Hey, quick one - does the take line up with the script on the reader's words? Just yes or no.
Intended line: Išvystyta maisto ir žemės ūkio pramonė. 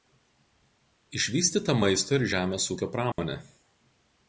yes